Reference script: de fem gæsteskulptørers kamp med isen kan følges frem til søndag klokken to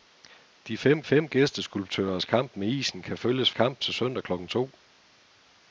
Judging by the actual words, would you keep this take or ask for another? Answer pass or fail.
fail